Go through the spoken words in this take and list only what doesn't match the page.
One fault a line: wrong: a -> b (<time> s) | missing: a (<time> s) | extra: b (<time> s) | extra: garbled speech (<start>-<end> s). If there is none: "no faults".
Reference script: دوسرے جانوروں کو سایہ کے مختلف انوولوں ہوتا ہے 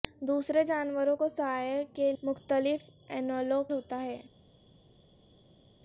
no faults